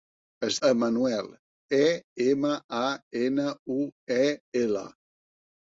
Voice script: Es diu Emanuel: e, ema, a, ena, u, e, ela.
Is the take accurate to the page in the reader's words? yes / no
no